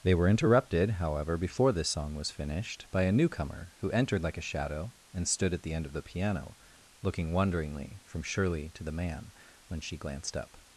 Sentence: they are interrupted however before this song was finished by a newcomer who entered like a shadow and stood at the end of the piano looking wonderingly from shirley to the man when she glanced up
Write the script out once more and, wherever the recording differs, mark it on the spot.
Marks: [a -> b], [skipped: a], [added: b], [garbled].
they [are -> were] interrupted however before this song was finished by a newcomer who entered like a shadow and stood at the end of the piano looking wonderingly from shirley to the man when she glanced up